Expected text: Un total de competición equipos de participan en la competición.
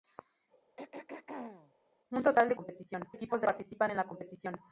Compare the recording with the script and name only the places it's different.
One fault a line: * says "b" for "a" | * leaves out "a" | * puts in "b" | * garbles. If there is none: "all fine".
all fine